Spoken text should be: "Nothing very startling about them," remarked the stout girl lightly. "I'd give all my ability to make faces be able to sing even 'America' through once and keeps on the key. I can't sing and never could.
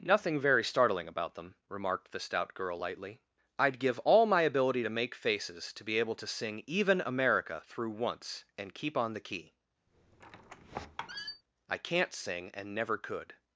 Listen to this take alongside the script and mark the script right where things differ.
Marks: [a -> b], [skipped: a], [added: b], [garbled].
"Nothing very startling about them," remarked the stout girl lightly. "I'd give all my ability to make faces [added: to] be able to sing even 'America' through once and [keeps -> keep] on the key. I can't sing and never could.